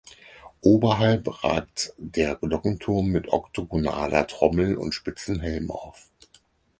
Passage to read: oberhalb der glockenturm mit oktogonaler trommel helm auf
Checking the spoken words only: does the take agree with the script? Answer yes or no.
no